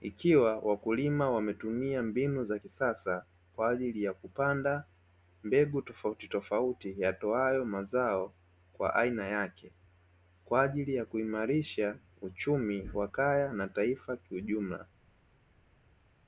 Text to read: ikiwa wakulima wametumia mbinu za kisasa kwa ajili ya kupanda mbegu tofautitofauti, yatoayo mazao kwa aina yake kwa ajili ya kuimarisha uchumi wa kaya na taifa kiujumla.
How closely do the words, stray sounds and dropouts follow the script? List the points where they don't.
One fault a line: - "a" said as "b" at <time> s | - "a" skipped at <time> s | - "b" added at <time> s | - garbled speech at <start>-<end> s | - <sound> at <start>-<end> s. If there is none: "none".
none